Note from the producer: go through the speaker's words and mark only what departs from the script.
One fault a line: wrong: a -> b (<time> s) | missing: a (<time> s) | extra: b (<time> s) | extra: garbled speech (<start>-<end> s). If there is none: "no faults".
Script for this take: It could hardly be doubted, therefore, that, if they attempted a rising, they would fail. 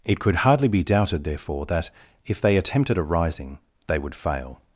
no faults